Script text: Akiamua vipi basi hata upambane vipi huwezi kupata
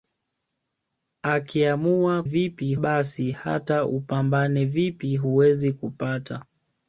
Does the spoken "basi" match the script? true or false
true